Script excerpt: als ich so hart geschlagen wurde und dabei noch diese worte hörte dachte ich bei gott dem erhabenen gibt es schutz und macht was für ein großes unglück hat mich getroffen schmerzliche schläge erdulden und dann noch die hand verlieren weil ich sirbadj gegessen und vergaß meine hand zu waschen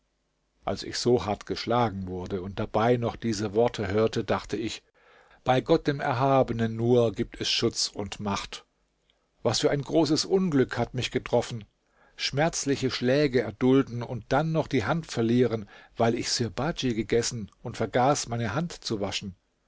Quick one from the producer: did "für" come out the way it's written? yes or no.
yes